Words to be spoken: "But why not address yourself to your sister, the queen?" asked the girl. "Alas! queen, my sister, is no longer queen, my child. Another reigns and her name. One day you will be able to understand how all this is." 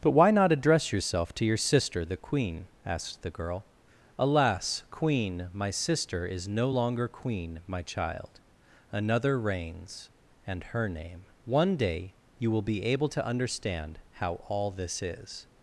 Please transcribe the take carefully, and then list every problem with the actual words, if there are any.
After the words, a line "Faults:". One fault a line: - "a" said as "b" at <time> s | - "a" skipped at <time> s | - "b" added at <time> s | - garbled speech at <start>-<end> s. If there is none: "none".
"But why not address yourself to your sister, the queen?" asked the girl. "Alas! queen, my sister, is no longer queen, my child. Another reigns and her name. One day you will be able to understand how all this is."
Faults:
none